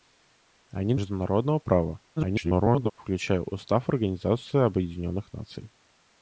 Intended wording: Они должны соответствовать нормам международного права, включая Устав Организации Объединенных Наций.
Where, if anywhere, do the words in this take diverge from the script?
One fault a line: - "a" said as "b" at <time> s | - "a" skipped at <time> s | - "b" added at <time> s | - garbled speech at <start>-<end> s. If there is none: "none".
- "должны соответствовать нормам" skipped at 0.9 s
- garbled speech at 2.2-2.9 s